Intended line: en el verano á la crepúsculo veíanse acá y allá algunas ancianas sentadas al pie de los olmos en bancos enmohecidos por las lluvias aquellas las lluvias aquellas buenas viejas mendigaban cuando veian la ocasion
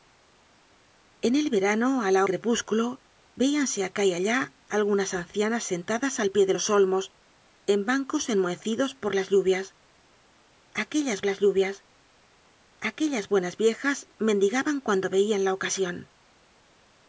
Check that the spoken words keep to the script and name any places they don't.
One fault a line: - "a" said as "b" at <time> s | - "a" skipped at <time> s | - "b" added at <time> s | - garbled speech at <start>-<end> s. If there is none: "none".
none